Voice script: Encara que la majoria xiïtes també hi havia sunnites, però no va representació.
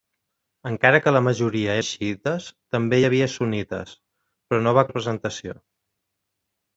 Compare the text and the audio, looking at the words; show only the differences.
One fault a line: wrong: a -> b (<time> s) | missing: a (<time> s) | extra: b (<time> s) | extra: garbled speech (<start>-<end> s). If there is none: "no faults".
no faults